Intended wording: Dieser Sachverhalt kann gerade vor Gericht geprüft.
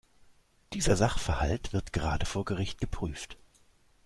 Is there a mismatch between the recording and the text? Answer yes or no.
yes